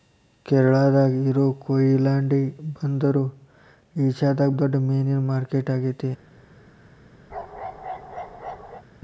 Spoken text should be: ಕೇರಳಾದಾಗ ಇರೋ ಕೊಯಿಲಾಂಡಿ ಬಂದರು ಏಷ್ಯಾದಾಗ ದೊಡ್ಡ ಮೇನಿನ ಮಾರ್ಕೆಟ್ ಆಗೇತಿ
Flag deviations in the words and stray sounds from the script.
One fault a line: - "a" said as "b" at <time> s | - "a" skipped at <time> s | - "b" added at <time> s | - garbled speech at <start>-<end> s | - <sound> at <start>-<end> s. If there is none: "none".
- bark at 7.3-8.8 s